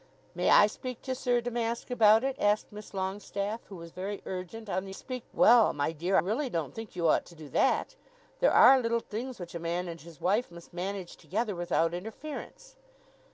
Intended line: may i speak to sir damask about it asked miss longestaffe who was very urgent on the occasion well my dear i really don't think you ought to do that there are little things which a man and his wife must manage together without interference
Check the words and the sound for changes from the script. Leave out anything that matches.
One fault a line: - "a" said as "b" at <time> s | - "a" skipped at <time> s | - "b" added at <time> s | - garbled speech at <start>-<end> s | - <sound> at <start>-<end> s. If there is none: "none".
- "occasion" said as "speak" at 4.9 s
- "i" skipped at 6.2 s